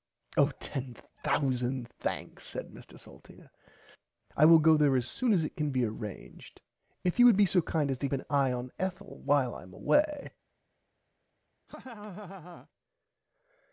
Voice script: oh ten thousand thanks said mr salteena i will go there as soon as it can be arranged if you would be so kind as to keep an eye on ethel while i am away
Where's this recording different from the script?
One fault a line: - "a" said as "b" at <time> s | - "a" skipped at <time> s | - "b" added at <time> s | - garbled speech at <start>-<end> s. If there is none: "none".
- "keep" skipped at 8.1 s